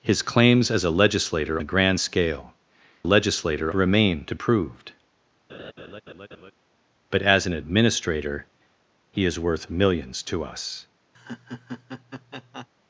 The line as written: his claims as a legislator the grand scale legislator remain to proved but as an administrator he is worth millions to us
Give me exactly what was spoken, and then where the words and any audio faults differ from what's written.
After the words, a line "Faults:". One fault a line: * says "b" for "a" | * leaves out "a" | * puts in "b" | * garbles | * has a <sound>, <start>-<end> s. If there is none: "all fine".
his claims as a legislator the grand scale legislator remain to proved but as an administrator he is worth millions to us
Faults:
* has a laugh, 5.5-6.5 s
* has a laugh, 11.1-12.7 s